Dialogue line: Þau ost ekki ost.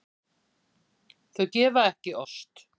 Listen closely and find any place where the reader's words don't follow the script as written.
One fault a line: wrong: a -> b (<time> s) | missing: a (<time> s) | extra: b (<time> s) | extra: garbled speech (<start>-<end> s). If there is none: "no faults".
wrong: ost -> gefa (1.6 s)